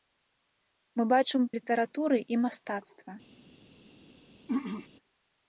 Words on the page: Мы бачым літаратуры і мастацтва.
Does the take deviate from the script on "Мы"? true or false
false